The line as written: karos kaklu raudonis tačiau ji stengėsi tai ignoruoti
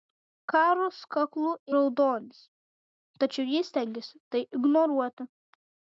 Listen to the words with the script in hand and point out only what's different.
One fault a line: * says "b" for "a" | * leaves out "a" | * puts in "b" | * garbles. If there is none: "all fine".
all fine